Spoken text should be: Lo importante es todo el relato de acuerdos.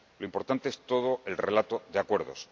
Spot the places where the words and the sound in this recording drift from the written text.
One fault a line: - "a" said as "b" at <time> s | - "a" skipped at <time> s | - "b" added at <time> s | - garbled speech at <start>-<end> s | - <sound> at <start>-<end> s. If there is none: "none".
none